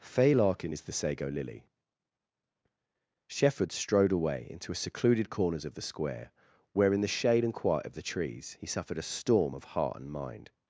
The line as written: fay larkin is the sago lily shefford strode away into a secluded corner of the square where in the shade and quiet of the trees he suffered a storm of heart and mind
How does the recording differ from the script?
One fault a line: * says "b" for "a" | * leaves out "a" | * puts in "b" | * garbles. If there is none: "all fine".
* says "corners" for "corner"